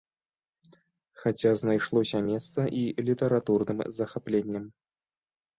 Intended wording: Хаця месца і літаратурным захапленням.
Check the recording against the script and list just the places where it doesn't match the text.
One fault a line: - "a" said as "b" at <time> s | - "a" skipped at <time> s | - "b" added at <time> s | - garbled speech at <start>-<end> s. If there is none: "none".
- "знайшлося" added at 1.6 s